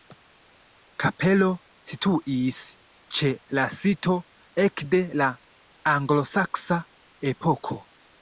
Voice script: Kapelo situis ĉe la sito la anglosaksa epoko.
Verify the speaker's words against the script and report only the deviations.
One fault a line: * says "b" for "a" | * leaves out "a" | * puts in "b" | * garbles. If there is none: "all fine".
* puts in "ekde"